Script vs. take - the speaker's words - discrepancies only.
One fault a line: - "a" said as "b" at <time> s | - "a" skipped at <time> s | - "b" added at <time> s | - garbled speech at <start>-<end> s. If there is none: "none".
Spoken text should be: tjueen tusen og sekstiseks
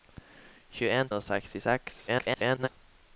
- "tusen" skipped at 1.1 s
- garbled speech at 2.1-2.7 s